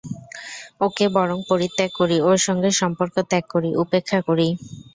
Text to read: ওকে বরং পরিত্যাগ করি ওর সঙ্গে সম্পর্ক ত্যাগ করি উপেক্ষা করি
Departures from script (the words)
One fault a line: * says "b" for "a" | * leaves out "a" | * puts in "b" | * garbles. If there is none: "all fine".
all fine